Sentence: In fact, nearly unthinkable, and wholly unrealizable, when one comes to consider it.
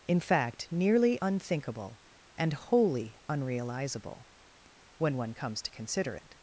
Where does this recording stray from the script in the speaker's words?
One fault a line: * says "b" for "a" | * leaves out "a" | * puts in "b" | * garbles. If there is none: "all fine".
all fine